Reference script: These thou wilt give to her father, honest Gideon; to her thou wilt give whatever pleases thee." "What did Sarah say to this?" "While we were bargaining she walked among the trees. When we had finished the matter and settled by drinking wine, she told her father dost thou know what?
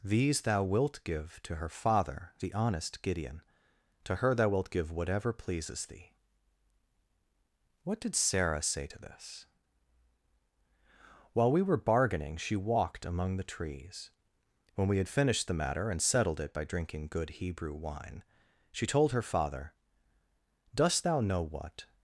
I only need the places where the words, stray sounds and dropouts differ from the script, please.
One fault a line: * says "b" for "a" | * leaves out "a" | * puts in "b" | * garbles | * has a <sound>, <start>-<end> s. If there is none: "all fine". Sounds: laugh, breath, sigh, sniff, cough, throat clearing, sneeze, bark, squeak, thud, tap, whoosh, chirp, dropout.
* puts in "the"
* puts in "it"
* puts in "good Hebrew"